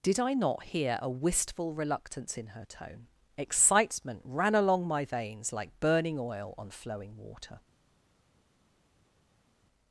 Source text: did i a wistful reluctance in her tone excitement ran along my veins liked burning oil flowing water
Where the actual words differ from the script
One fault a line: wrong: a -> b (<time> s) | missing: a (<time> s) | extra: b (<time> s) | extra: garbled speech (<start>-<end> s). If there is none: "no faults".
extra: not hear (0.3 s)
wrong: liked -> like (5.5 s)
extra: on (6.6 s)